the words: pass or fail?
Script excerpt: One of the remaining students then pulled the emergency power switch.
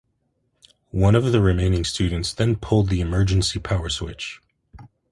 pass